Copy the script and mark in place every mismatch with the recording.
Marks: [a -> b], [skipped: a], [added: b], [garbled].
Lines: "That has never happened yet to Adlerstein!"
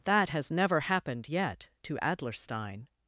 "That has never happened yet to Adlerstein!"